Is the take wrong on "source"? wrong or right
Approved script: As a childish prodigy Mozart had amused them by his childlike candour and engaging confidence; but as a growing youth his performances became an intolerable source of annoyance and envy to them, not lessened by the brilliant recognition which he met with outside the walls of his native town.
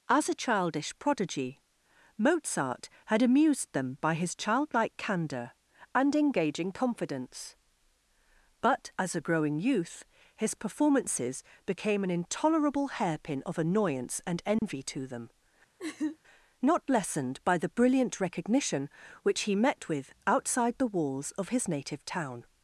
wrong